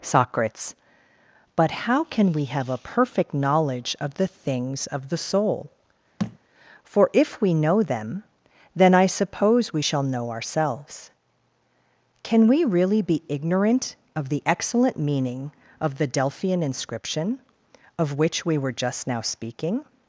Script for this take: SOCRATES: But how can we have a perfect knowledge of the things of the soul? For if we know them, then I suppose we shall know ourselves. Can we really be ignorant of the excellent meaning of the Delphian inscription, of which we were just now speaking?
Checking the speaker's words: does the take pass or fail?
pass